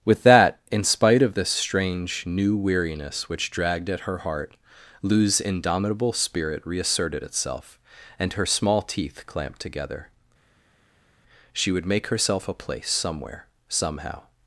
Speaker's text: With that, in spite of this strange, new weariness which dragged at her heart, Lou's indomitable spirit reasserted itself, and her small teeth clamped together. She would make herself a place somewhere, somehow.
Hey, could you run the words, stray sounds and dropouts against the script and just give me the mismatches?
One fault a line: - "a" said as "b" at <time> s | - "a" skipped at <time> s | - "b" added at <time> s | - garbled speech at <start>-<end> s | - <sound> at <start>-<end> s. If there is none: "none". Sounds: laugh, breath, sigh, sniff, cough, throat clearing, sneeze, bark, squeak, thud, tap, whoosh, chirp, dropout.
none